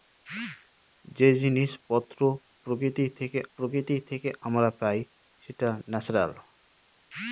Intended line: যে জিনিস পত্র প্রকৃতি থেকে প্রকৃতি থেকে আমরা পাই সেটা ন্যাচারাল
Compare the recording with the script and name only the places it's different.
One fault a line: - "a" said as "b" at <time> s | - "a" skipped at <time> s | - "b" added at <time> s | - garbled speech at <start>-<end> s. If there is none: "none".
none